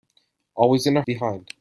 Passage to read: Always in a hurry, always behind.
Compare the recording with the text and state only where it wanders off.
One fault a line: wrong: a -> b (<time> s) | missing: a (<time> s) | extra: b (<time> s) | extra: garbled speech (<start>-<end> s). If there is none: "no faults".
missing: hurry always (1.0 s)